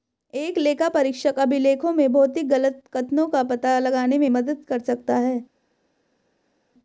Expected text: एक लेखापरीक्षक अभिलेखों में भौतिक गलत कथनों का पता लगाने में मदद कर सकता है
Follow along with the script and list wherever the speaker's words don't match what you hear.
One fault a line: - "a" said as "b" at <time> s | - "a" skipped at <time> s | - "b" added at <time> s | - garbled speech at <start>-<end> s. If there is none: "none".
none